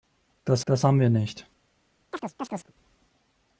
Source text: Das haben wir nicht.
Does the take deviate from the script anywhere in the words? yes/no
yes